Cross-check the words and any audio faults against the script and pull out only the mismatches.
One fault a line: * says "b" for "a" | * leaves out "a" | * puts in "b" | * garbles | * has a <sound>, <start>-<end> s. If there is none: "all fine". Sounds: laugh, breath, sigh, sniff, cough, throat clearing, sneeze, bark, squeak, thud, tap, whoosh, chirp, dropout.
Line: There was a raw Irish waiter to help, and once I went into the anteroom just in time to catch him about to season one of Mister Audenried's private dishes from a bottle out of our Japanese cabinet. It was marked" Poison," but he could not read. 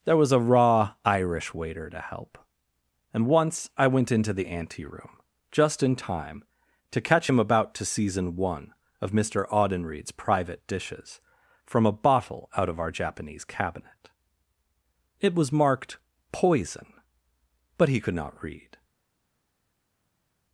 all fine